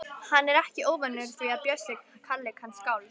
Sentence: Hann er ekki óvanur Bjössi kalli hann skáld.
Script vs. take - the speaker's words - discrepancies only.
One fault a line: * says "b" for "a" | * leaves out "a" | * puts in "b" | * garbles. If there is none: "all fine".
* puts in "því að"